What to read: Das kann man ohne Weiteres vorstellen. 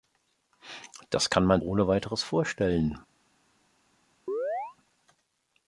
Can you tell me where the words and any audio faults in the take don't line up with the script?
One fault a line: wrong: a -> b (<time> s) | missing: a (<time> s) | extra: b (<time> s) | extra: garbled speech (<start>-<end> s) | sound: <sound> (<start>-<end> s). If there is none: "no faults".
sound: chirp (4.3-4.8 s)